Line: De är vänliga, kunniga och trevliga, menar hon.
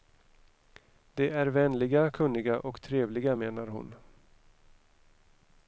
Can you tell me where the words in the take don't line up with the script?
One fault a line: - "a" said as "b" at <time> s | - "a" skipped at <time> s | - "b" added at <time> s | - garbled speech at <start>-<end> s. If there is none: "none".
none